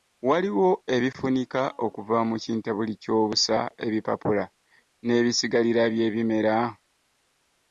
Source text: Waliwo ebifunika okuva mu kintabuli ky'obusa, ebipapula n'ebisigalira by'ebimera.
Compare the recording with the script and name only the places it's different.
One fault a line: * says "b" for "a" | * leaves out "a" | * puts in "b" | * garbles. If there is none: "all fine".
all fine